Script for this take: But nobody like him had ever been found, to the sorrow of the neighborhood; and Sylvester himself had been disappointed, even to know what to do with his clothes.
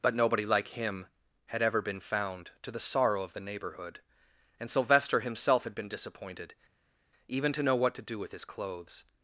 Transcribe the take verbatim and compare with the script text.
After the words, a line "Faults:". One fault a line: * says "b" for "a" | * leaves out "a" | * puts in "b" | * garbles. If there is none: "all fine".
But nobody like him had ever been found, to the sorrow of the neighborhood; and Sylvester himself had been disappointed, even to know what to do with his clothes.
Faults:
all fine